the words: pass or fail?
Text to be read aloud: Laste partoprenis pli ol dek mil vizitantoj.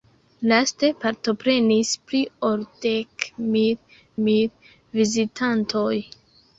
fail